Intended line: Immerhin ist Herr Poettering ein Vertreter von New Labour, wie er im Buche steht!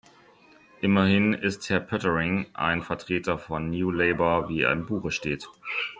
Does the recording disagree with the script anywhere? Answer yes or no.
no